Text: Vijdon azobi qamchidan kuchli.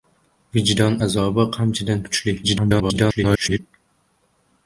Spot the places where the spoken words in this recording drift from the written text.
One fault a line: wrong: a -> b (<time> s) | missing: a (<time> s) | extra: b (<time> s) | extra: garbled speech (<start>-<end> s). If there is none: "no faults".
extra: garbled speech (2.4-3.6 s)